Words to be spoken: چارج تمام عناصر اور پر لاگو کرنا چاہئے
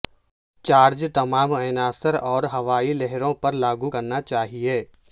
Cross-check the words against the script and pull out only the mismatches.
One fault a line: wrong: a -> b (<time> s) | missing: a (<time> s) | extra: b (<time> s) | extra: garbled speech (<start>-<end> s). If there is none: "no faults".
extra: ہوائی لہروں (2.5 s)